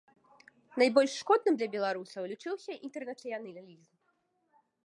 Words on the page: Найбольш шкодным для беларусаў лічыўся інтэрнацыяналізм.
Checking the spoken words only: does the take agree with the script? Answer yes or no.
yes